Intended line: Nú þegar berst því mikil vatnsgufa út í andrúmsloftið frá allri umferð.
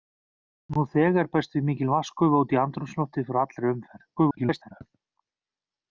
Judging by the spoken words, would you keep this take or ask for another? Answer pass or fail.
fail